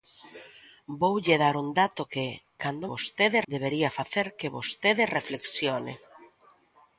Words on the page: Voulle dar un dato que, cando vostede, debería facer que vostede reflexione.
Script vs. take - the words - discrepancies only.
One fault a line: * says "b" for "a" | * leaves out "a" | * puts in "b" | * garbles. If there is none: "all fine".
all fine